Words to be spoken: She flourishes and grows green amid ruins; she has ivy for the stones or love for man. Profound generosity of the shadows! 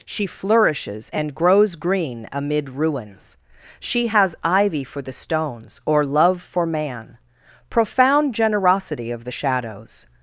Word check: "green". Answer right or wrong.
right